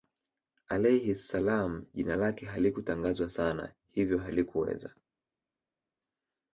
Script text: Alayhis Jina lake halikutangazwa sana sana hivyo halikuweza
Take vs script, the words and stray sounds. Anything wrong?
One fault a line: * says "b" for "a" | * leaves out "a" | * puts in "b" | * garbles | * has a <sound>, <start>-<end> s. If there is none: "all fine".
* puts in "Salaam"
* leaves out "sana"